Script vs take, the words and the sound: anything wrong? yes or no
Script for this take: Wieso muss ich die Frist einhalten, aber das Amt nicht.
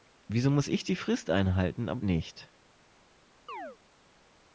yes